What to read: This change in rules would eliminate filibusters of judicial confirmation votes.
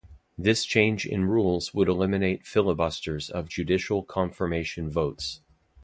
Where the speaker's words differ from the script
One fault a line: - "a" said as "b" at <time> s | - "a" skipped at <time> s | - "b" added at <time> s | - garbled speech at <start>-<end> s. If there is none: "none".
none